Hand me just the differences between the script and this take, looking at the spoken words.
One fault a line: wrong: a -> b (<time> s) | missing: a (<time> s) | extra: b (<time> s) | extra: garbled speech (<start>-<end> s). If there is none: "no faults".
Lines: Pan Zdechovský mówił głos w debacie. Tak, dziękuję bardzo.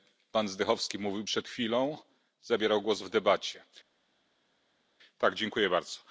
extra: przed chwilą Zabierał (1.2 s)